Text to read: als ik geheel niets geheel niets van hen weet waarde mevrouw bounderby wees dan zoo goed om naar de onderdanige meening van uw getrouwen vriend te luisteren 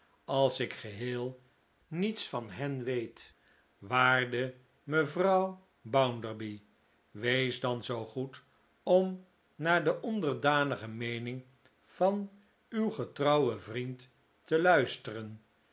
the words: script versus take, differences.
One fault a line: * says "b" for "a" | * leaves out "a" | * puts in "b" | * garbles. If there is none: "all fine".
* leaves out "geheel niets"